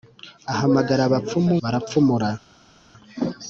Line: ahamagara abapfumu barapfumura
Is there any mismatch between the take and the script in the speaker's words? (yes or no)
no